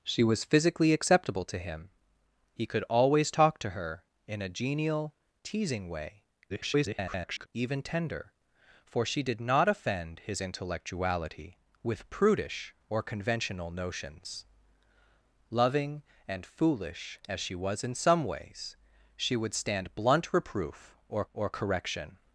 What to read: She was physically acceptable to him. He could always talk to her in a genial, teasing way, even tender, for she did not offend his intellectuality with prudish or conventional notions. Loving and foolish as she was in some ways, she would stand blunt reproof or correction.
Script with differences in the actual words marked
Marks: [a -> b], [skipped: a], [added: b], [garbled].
She was physically acceptable to him. He could always talk to her in a genial, teasing way, [garbled] even tender, for she did not offend his intellectuality with prudish or conventional notions. Loving and foolish as she was in some ways, she would stand blunt reproof or [added: or] correction.